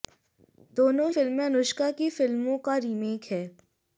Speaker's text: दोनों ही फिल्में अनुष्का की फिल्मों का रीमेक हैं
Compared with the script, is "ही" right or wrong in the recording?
wrong